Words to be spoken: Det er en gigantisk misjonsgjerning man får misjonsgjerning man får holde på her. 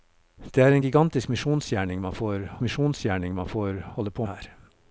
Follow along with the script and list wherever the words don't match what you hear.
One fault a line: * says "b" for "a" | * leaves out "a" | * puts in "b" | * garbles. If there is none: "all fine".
all fine